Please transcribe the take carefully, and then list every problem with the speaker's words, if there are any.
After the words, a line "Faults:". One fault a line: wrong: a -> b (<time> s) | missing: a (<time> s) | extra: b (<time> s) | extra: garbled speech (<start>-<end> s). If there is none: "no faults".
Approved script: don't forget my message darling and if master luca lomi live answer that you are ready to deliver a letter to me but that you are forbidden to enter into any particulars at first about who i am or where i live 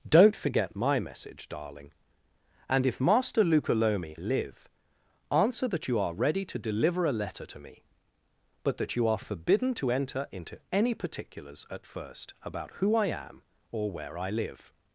don't forget my message darling and if master luca lomi live answer that you are ready to deliver a letter to me but that you are forbidden to enter into any particulars at first about who i am or where i live
Faults:
no faults